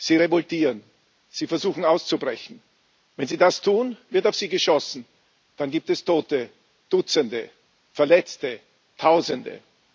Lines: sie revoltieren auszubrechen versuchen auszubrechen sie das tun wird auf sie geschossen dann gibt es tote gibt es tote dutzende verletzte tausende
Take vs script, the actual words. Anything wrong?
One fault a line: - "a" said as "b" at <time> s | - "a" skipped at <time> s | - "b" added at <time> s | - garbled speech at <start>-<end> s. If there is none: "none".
- "auszubrechen" said as "sie" at 1.3 s
- "wenn" added at 3.2 s
- "gibt es tote" skipped at 6.5 s